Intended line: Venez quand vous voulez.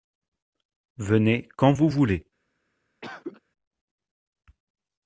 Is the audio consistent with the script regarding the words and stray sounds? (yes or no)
no